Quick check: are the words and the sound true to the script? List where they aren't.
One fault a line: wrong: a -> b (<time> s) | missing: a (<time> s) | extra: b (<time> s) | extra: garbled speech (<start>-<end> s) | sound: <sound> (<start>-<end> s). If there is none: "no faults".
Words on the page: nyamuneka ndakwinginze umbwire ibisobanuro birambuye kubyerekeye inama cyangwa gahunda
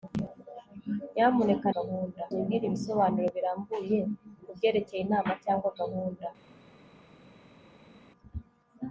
wrong: ndakwinginze -> gahunda (1.8 s)